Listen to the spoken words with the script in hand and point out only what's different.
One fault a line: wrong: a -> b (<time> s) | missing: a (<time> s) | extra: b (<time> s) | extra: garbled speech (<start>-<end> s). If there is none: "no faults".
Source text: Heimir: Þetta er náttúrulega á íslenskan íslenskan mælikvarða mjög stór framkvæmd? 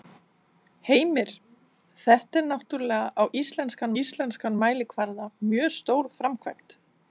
no faults